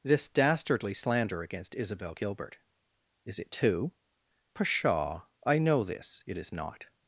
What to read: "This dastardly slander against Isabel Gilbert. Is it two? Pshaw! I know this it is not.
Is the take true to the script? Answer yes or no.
yes